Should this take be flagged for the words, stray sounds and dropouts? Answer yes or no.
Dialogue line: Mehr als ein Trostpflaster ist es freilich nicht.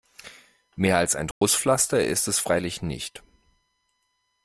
yes